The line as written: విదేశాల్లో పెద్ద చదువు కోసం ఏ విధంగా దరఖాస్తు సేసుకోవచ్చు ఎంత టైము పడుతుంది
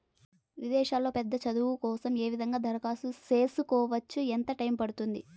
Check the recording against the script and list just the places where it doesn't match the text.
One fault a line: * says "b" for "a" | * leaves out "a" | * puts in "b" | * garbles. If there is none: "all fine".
all fine